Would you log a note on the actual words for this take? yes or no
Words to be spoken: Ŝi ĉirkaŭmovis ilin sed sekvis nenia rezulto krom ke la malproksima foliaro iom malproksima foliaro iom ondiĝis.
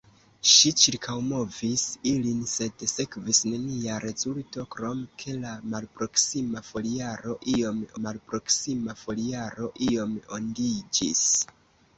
no